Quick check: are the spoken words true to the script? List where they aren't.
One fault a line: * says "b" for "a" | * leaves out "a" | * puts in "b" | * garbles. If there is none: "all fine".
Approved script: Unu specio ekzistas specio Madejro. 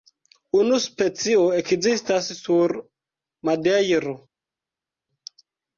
* says "sur" for "specio"